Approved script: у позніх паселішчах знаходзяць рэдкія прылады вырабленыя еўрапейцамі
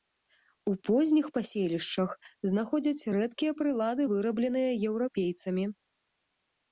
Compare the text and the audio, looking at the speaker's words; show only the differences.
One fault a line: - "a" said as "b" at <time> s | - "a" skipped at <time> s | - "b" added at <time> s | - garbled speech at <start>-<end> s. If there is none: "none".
none